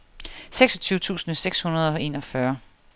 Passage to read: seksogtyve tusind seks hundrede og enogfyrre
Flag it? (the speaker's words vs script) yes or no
no